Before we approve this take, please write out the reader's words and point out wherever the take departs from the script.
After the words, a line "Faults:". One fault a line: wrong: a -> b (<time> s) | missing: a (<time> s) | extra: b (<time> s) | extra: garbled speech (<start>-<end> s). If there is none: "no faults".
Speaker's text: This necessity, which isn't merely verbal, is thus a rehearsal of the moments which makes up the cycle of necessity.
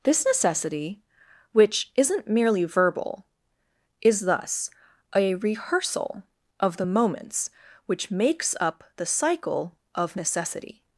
This necessity, which isn't merely verbal, is thus a rehearsal of the moments which makes up the cycle of necessity.
Faults:
no faults